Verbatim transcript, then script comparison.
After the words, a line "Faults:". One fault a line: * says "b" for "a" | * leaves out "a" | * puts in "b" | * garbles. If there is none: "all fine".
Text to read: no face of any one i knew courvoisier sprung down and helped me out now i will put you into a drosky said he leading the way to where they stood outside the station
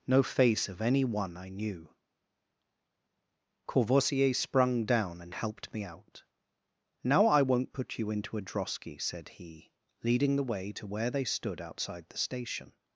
no face of any one i knew courvoisier sprung down and helped me out now i won't put you into a drosky said he leading the way to where they stood outside the station
Faults:
* says "won't" for "will"